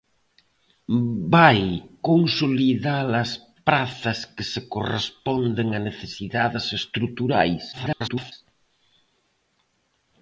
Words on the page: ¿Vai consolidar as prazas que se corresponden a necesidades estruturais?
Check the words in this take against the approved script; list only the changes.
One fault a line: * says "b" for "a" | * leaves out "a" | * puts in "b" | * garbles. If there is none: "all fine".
* garbles